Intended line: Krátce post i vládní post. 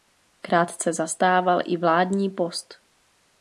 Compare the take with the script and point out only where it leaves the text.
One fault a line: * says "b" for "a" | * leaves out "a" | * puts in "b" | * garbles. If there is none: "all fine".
* says "zastával" for "post"